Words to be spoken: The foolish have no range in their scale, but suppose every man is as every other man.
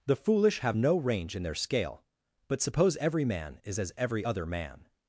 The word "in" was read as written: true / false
true